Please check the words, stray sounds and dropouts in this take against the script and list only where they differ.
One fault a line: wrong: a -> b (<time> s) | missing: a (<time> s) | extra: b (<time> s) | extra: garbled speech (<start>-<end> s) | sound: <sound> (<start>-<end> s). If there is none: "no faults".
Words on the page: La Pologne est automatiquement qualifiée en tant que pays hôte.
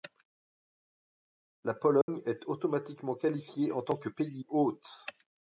sound: dropout (2.0-2.1 s)